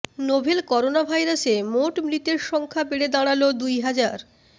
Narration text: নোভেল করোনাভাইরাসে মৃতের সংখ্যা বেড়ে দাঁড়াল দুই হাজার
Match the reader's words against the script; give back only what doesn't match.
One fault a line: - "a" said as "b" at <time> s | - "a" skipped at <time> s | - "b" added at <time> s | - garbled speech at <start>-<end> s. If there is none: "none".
- "মোট" added at 1.7 s